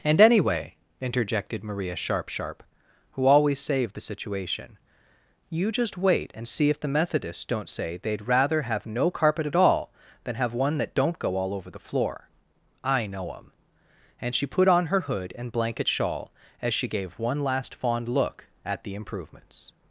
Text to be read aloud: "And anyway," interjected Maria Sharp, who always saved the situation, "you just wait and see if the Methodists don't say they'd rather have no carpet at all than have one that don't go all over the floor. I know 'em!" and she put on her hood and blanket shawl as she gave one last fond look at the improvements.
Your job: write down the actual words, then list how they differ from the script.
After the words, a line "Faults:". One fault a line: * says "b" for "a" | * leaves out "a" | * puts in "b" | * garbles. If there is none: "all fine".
"And anyway," interjected Maria Sharp Sharp, who always saved the situation, "you just wait and see if the Methodists don't say they'd rather have no carpet at all than have one that don't go all over the floor. I know 'em!" and she put on her hood and blanket shawl as she gave one last fond look at the improvements.
Faults:
* puts in "Sharp"